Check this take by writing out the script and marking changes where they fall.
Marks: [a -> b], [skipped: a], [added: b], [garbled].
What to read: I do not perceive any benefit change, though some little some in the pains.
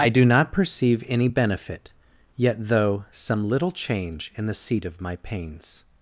I do not perceive any benefit [change, -> yet] though some little [some -> change] in the [added: seat of my] pains.